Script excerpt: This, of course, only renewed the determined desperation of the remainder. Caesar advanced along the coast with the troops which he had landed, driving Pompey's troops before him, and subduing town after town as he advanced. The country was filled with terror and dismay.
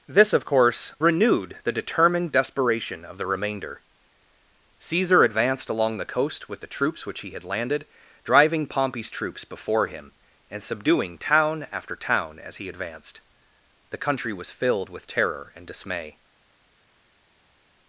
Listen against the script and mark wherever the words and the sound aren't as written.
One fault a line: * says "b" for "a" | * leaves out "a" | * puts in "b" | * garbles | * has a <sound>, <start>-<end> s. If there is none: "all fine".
* leaves out "only"